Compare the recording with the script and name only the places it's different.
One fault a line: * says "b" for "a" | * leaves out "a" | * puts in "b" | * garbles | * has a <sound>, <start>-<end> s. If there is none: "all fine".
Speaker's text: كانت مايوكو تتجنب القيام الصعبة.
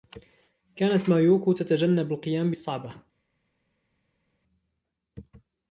all fine